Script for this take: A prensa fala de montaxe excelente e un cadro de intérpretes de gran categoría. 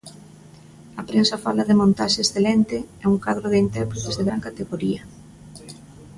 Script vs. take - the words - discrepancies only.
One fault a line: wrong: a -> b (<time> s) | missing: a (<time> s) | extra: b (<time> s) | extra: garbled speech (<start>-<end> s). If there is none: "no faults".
no faults